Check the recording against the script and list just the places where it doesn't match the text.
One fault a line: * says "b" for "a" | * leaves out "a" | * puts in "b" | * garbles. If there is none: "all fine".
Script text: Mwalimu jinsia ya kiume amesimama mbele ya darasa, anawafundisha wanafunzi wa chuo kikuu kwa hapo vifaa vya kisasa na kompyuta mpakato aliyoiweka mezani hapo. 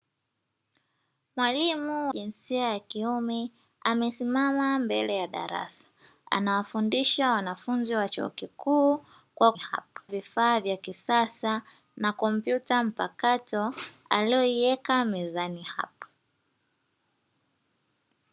all fine